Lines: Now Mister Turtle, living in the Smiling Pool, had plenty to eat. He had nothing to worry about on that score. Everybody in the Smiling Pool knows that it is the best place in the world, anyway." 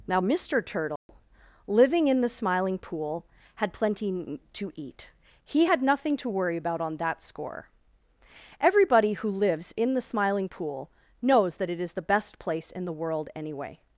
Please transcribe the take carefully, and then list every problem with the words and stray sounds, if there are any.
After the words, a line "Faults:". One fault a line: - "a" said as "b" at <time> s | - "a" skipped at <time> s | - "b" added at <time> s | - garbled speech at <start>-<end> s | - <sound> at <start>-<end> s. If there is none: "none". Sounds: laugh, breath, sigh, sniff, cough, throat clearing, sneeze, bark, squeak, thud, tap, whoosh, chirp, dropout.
Now Mister Turtle, living in the Smiling Pool, had plenty to eat. He had nothing to worry about on that score. Everybody who lives in the Smiling Pool knows that it is the best place in the world, anyway."
Faults:
- dropout at 1.0-1.1 s
- "who lives" added at 9.1 s